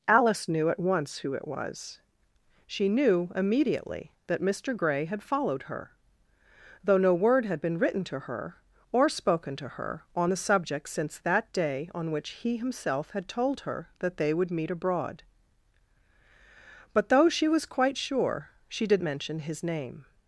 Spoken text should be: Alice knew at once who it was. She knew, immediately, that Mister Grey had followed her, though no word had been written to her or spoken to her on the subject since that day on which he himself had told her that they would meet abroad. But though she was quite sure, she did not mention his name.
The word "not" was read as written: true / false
false